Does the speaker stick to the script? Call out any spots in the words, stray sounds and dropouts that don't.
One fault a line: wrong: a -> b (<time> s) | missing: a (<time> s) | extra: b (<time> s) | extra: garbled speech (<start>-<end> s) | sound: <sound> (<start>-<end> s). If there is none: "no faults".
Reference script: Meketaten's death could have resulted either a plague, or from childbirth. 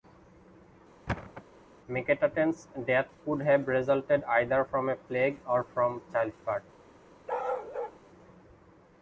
sound: thud (1.1-1.4 s)
extra: from (4.6 s)
sound: bark (7.3-8.0 s)